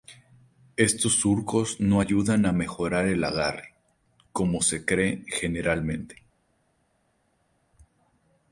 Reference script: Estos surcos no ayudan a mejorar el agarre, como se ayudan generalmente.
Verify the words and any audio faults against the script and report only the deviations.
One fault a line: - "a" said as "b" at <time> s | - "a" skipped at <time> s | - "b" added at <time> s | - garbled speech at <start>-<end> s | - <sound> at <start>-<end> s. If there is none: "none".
- "ayudan" said as "cree" at 4.8 s